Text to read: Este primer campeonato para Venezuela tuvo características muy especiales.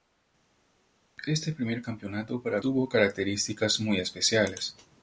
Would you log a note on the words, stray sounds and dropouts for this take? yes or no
yes